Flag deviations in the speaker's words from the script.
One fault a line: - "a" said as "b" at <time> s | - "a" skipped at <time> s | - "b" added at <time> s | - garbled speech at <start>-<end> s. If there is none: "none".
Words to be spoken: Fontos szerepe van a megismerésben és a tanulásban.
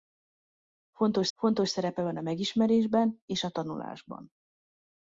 - "fontos" added at 1.4 s